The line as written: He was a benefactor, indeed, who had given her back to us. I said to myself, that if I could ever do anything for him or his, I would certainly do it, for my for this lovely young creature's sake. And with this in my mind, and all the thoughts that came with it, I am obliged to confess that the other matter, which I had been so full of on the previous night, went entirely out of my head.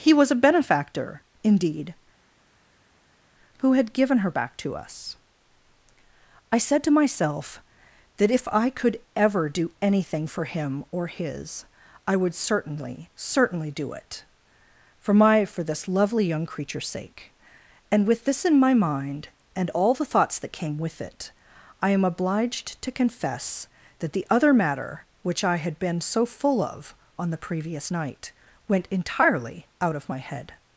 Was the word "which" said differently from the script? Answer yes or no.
no